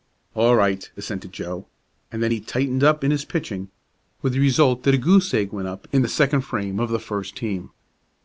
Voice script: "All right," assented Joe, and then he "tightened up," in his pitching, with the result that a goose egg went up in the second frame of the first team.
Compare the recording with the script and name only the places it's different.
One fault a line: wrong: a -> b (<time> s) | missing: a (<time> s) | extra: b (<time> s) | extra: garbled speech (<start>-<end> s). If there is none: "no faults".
no faults